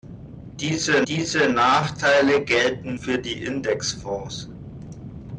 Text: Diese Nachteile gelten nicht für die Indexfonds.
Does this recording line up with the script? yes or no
no